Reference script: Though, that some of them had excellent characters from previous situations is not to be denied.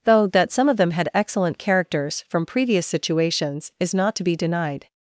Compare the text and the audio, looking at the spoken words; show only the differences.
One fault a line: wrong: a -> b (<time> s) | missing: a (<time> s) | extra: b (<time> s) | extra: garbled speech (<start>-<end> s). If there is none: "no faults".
no faults